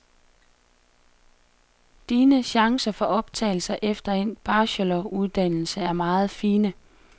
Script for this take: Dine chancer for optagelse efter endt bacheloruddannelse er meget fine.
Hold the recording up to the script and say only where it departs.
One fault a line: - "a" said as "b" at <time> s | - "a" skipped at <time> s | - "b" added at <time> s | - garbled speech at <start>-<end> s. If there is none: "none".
none